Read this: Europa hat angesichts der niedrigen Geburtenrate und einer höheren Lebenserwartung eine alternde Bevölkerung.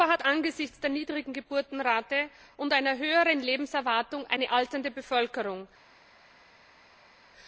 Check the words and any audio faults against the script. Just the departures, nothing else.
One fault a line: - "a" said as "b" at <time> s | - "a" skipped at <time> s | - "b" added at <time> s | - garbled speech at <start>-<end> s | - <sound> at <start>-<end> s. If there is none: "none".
none